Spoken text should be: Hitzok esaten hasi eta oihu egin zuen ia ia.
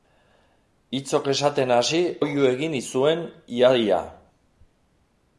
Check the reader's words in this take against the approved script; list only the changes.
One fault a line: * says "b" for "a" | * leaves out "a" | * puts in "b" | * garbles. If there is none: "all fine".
* leaves out "eta"